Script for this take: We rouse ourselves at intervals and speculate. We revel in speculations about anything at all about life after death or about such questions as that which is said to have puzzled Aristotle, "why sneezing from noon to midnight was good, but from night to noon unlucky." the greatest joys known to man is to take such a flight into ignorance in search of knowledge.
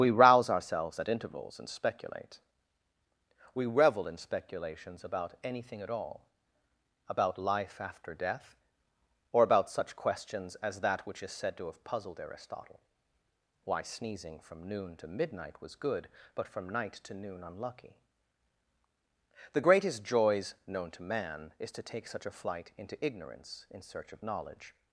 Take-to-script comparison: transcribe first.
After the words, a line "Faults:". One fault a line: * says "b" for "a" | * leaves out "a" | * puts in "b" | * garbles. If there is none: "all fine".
We rouse ourselves at intervals and speculate. We revel in speculations about anything at all about life after death or about such questions as that which is said to have puzzled Aristotle, "why sneezing from noon to midnight was good, but from night to noon unlucky." the greatest joys known to man is to take such a flight into ignorance in search of knowledge.
Faults:
all fine